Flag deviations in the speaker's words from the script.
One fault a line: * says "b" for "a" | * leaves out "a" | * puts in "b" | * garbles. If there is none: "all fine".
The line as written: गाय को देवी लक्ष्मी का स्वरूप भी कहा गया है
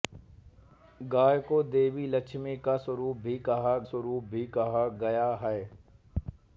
* puts in "स्वरूप भी कहा"